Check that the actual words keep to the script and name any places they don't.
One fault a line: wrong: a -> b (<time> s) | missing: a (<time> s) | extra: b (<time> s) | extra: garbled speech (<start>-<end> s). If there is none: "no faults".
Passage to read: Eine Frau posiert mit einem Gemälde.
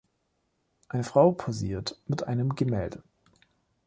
no faults